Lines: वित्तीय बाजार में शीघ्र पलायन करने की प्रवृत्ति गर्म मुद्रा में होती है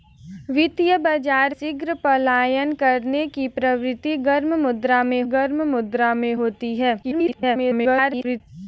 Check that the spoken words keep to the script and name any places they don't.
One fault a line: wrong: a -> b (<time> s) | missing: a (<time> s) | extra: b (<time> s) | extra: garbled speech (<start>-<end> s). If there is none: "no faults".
missing: में (1.6 s)
extra: गर्म मुद्रा में (5.3 s)
extra: garbled speech (7.0-8.4 s)